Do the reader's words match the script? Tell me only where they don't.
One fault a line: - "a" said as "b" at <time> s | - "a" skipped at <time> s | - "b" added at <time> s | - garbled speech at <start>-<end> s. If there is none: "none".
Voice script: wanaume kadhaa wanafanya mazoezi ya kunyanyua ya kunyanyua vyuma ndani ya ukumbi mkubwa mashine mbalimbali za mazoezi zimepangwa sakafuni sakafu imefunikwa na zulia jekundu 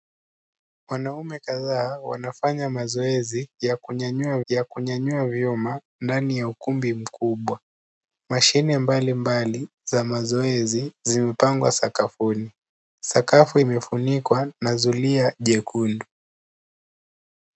none